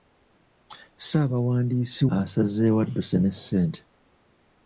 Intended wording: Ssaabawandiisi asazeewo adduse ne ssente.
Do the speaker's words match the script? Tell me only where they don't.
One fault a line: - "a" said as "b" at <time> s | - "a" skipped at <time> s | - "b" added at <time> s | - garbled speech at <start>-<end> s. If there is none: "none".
none